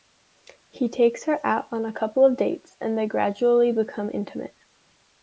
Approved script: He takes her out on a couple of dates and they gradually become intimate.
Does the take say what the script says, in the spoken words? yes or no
yes